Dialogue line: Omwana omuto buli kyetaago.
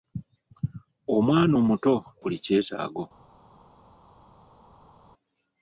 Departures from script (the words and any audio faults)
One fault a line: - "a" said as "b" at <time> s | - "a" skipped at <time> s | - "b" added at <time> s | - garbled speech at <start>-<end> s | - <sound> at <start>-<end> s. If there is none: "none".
none